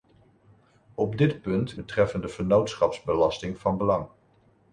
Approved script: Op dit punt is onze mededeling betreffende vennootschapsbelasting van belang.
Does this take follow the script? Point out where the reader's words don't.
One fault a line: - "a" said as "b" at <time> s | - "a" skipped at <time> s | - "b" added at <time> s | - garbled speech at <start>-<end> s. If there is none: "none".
- "is onze mededeling" skipped at 1.8 s